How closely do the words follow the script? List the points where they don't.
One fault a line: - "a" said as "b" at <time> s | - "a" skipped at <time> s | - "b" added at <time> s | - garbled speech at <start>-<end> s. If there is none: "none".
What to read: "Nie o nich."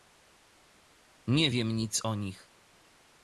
- "wiem nic" added at 1.5 s